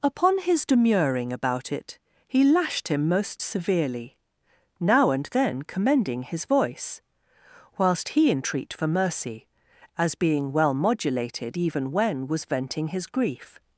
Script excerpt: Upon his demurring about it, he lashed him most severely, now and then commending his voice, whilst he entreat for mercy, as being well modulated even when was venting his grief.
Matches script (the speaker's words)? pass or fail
pass